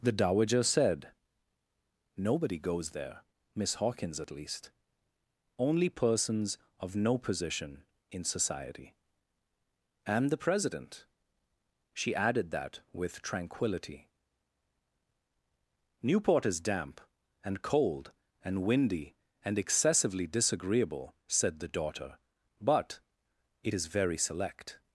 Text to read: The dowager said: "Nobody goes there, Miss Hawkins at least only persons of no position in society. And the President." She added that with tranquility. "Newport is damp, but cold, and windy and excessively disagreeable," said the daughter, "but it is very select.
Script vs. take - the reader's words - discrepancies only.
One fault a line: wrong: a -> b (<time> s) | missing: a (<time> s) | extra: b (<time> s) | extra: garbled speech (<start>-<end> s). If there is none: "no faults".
wrong: but -> and (17.4 s)